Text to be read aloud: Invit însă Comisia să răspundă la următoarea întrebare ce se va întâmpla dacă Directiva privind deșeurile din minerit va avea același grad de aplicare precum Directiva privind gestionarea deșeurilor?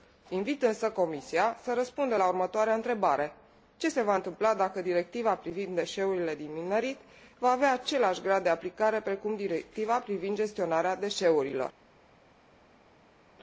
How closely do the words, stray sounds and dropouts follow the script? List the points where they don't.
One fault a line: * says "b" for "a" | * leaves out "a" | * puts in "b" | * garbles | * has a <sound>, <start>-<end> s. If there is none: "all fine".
all fine